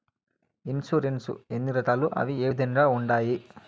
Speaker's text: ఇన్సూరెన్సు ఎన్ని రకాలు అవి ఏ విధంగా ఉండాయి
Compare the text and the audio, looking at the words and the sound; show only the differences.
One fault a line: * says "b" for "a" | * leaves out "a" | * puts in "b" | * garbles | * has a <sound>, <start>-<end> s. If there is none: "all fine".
all fine